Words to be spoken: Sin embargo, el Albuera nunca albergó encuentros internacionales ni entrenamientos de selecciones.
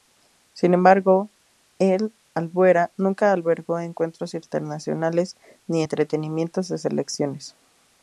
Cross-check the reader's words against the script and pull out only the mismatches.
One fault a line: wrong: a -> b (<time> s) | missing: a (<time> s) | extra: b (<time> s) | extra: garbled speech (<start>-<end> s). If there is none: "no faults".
no faults